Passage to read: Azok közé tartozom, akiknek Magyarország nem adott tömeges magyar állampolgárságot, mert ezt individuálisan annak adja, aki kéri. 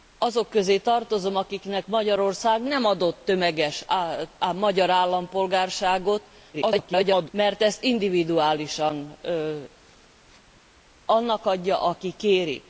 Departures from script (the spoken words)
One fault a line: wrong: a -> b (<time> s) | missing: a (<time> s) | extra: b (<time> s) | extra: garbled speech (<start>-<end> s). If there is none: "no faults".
extra: garbled speech (6.5-7.3 s)